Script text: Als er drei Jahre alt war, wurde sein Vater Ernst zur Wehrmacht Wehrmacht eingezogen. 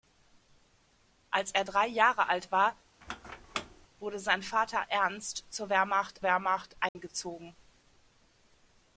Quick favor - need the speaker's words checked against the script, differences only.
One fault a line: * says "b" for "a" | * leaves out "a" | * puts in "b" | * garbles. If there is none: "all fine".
all fine